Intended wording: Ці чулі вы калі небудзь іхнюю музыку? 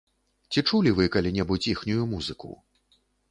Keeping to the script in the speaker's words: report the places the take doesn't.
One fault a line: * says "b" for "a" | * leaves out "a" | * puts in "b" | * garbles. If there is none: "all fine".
all fine